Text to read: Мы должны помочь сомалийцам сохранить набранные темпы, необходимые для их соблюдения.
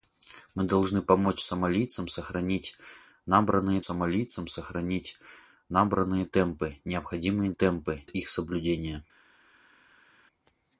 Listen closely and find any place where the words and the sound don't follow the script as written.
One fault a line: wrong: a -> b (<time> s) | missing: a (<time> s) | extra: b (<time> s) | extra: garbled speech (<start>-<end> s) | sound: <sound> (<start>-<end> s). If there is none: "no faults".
extra: сомалийцам сохранить набранные (3.8 s)
wrong: для -> темпы (7.5 s)